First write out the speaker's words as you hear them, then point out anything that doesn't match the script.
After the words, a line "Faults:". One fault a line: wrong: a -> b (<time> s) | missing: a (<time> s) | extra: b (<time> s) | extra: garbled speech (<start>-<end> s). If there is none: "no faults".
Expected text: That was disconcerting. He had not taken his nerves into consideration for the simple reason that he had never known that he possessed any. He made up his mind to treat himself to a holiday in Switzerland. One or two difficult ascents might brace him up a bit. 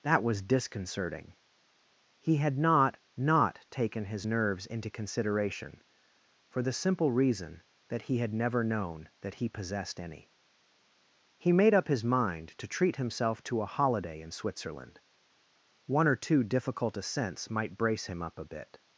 That was disconcerting. He had not not taken his nerves into consideration for the simple reason that he had never known that he possessed any. He made up his mind to treat himself to a holiday in Switzerland. One or two difficult ascents might brace him up a bit.
Faults:
extra: not (3.1 s)